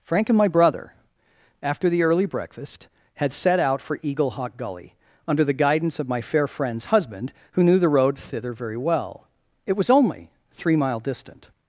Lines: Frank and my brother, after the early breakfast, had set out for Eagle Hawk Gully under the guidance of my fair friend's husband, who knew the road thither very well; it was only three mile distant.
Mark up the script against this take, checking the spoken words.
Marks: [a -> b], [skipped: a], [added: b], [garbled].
Frank and my brother, after the early breakfast, had set out for Eagle Hawk Gully under the guidance of my fair friend's husband, who knew the road thither very well; it was only three mile distant.